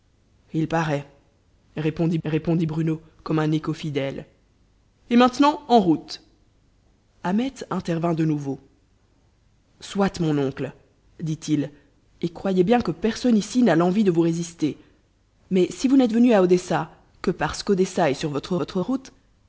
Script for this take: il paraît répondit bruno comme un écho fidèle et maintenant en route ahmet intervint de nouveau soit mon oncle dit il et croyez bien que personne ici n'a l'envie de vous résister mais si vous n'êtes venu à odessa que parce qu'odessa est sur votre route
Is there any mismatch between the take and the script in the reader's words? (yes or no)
yes